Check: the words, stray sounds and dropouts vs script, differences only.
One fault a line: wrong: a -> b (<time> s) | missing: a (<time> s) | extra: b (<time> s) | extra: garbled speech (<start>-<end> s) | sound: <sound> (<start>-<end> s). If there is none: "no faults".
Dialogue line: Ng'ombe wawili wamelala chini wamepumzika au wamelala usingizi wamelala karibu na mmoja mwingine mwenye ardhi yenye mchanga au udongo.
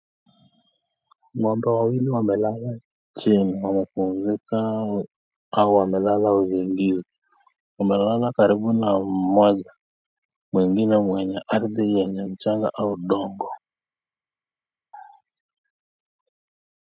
no faults